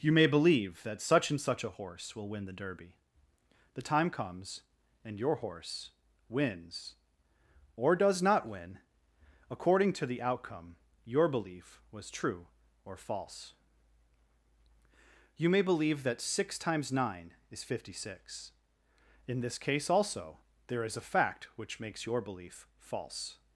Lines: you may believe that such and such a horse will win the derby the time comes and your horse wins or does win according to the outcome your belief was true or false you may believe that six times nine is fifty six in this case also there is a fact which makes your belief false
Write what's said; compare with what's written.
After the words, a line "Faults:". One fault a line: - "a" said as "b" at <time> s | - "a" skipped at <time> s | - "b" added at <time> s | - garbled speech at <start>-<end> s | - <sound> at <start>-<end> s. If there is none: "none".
you may believe that such and such a horse will win the derby the time comes and your horse wins or does not win according to the outcome your belief was true or false you may believe that six times nine is fifty six in this case also there is a fact which makes your belief false
Faults:
- "not" added at 8.2 s